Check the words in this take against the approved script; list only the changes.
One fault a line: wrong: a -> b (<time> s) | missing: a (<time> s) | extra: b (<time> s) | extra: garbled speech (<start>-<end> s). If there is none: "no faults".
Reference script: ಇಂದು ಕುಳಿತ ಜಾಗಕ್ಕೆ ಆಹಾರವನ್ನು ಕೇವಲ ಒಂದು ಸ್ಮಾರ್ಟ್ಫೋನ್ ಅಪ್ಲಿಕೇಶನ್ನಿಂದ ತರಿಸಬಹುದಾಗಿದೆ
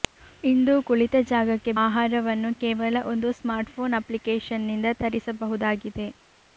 no faults